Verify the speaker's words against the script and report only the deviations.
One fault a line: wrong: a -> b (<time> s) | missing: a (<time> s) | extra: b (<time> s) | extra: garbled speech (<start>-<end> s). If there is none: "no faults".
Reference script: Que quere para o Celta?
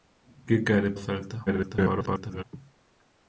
missing: para (0.9 s)
extra: garbled speech (1.5-2.4 s)